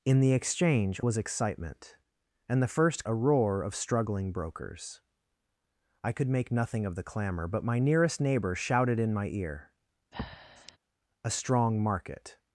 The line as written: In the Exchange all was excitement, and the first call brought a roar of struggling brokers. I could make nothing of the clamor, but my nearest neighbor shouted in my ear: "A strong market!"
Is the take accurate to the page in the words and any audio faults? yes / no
no